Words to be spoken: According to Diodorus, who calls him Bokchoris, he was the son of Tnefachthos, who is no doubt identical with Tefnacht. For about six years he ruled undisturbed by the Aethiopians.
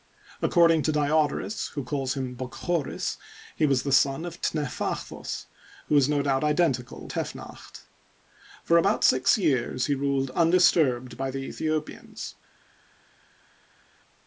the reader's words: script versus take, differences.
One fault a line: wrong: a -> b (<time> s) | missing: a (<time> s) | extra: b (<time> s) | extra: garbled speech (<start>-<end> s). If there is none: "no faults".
missing: with (7.1 s)